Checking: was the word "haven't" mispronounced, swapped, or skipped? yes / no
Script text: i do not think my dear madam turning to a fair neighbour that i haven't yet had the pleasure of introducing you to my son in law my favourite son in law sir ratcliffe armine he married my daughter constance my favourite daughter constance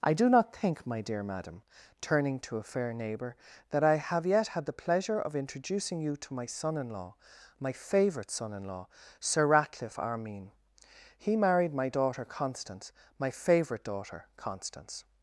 yes